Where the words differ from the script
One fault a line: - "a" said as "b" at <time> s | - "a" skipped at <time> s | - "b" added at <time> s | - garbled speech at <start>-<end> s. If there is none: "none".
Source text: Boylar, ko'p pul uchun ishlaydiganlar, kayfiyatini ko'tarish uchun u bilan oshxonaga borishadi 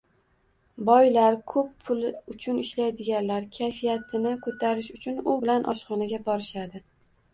none